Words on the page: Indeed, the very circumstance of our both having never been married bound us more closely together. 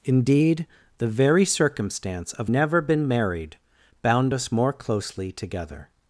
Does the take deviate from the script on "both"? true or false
true